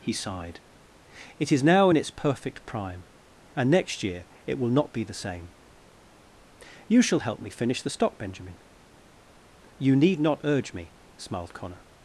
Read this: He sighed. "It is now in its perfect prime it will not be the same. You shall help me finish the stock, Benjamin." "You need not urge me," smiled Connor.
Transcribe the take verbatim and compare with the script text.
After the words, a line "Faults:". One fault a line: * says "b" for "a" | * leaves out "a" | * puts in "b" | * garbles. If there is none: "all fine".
He sighed. "It is now in its perfect prime and next year it will not be the same. You shall help me finish the stock, Benjamin." "You need not urge me," smiled Connor.
Faults:
* puts in "and next year"